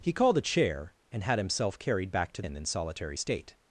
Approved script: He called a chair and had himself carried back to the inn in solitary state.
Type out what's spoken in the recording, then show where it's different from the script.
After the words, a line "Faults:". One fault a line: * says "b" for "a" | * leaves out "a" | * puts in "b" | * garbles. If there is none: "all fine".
He called a chair and had himself carried back to inn in solitary state.
Faults:
* leaves out "the"